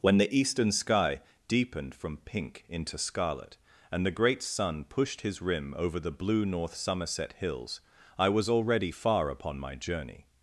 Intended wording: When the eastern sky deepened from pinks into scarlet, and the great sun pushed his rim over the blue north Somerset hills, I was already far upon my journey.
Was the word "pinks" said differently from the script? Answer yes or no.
yes